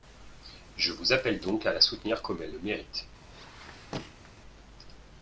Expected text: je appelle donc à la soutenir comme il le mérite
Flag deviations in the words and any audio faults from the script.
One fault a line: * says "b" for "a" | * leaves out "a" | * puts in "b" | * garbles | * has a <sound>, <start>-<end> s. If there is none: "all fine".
* puts in "vous"
* says "elle" for "il"
* has a squeak, 3.2-4.3 s